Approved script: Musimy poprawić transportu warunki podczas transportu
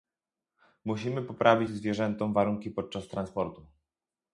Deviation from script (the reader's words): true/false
true